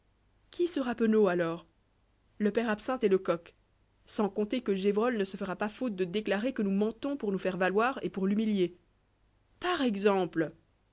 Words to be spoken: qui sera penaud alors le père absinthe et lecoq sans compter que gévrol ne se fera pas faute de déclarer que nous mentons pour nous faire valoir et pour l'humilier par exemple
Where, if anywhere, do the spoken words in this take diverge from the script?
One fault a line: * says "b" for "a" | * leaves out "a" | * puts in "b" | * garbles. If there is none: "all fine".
all fine